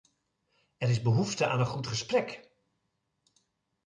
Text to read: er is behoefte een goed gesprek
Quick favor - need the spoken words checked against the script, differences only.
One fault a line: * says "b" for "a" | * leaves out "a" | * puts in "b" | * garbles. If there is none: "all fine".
* puts in "aan"